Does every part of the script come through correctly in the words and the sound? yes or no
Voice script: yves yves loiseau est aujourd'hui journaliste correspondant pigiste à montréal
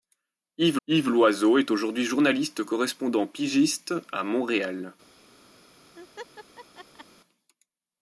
no